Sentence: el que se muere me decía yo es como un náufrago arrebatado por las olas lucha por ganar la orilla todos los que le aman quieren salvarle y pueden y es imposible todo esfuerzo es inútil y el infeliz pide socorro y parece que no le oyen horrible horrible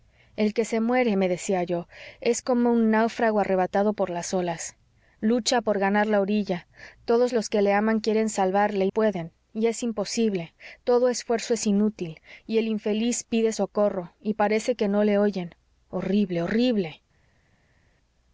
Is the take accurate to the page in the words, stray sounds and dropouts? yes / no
yes